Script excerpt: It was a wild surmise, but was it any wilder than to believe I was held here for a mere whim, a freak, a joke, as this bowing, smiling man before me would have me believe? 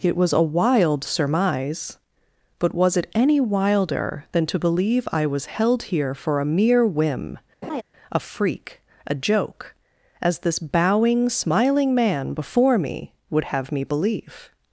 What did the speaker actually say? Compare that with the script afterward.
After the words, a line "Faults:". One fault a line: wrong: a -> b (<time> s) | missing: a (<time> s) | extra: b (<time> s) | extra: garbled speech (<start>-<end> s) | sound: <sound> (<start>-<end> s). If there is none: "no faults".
It was a wild surmise, but was it any wilder than to believe I was held here for a mere whim, a freak, a joke, as this bowing, smiling man before me would have me believe?
Faults:
sound: laugh (7.6-7.8 s)